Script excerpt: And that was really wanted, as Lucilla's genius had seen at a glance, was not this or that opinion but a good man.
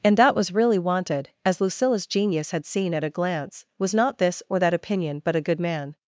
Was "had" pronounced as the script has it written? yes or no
yes